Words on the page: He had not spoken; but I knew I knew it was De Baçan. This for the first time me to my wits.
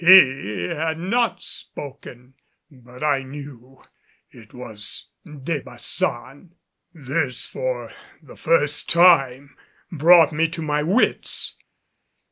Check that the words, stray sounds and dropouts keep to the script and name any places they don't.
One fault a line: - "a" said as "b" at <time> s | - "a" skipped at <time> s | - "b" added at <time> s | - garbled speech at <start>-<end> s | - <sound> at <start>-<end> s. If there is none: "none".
- "I knew" skipped at 3.8 s
- "brought" added at 9.9 s